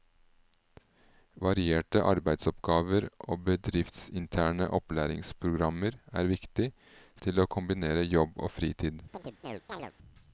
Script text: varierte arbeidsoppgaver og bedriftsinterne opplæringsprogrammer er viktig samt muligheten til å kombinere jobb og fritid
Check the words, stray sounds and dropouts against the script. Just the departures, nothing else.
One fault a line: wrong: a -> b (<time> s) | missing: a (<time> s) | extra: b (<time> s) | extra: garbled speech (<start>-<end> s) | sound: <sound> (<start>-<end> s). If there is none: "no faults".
missing: samt muligheten (6.7 s)
sound: chirp (9.1-9.9 s)